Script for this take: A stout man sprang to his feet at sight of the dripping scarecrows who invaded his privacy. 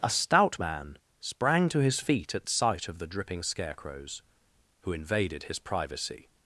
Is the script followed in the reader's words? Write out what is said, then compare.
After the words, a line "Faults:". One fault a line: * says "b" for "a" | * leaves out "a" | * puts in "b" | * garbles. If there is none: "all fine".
A stout man sprang to his feet at sight of the dripping scarecrows who invaded his privacy.
Faults:
all fine